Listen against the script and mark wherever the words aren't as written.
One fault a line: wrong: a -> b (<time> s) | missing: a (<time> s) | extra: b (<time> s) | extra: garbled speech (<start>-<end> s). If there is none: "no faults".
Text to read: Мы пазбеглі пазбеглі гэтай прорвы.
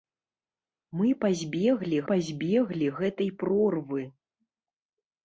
no faults